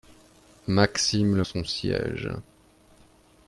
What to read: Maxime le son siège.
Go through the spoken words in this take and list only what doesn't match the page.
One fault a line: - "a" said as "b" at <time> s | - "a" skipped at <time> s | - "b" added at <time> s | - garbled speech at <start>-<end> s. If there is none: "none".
none